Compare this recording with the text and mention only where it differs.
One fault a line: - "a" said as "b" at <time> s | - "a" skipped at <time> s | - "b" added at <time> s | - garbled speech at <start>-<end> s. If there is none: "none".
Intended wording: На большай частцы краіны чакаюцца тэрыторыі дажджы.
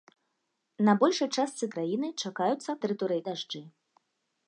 none